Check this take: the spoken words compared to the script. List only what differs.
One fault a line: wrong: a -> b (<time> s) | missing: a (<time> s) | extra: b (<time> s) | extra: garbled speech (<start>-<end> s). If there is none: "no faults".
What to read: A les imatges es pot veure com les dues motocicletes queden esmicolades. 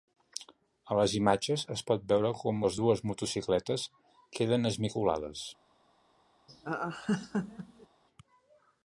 no faults